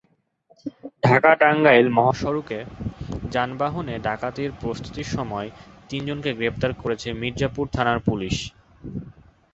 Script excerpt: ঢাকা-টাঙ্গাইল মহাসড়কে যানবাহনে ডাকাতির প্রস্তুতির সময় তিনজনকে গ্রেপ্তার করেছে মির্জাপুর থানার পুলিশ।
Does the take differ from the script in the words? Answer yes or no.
no